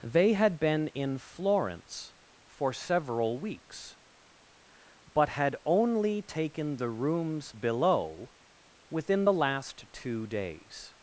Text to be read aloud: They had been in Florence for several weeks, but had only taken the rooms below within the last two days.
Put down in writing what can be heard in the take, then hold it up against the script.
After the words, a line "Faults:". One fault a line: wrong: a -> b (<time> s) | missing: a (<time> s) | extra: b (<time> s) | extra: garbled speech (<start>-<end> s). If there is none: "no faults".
They had been in Florence for several weeks, but had only taken the rooms below within the last two days.
Faults:
no faults